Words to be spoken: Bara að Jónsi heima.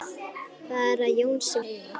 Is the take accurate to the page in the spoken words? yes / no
yes